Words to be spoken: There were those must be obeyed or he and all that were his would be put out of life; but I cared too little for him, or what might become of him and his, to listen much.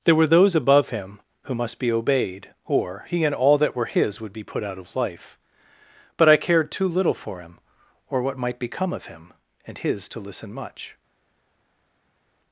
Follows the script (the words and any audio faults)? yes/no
no